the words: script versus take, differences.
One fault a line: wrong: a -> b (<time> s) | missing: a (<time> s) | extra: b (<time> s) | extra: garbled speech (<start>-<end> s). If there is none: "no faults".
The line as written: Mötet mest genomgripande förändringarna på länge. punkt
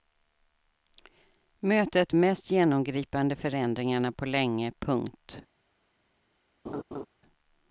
no faults